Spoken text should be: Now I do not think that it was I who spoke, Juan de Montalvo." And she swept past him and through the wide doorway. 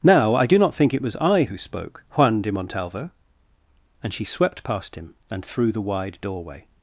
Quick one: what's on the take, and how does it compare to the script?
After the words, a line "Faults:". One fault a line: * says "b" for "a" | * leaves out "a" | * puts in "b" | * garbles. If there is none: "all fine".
Now I do not think it was I who spoke, Juan de Montalvo." And she swept past him and through the wide doorway.
Faults:
* leaves out "that"